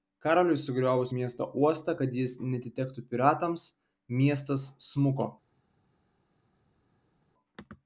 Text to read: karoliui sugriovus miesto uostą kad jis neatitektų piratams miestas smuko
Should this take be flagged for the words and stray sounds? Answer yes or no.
no